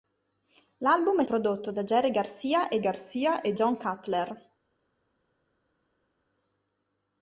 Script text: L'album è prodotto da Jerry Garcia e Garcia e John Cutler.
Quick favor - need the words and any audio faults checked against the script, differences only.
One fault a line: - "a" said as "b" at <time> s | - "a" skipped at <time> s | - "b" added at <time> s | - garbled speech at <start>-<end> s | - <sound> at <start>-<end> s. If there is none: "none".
none